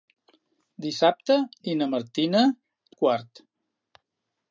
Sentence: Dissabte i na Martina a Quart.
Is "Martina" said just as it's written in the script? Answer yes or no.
yes